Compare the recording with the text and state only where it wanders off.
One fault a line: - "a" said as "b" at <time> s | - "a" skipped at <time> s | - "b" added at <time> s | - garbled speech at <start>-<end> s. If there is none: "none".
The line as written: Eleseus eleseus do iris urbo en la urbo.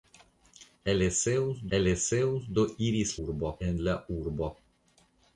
none